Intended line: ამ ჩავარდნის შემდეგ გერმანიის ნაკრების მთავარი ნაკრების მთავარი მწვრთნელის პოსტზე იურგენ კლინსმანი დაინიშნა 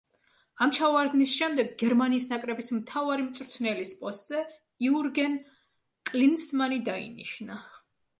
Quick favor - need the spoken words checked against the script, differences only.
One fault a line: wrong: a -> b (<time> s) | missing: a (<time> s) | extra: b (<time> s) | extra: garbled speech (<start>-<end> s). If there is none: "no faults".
missing: ნაკრების მთავარი (3.2 s)